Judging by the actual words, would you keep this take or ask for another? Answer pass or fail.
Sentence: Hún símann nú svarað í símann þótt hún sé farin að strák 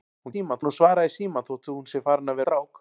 pass